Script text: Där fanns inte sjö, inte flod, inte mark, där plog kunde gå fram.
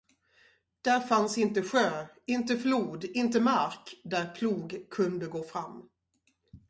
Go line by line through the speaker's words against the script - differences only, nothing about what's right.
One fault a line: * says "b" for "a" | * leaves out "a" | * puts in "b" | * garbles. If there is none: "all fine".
all fine